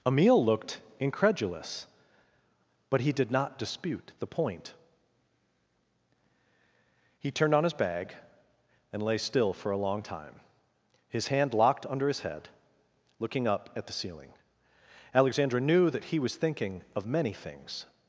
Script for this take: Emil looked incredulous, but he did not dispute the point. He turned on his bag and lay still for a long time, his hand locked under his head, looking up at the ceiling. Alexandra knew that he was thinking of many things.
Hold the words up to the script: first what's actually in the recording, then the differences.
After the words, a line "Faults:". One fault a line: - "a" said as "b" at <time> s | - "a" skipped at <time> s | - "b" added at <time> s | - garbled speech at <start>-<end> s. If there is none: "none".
Emil looked incredulous, but he did not dispute the point. He turned on his bag and lay still for a long time, his hand locked under his head, looking up at the ceiling. Alexandra knew that he was thinking of many things.
Faults:
none